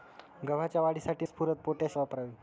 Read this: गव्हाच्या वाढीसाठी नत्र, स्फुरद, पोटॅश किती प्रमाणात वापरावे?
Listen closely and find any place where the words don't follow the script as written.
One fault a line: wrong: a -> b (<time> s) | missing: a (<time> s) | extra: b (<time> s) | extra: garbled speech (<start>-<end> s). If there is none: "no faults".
missing: नत्र (1.2 s)
missing: किती प्रमाणात (2.0 s)